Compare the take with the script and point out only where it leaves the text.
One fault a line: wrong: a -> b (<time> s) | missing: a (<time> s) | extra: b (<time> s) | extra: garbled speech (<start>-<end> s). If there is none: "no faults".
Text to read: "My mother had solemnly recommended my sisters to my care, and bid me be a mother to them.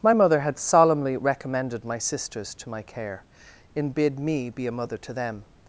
wrong: and -> in (3.7 s)